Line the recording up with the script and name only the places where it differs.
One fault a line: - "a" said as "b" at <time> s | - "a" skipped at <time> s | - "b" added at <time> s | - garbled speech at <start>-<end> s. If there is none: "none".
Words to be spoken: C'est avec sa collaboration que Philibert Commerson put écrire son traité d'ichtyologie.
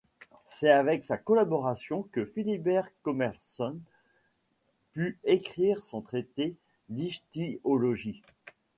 none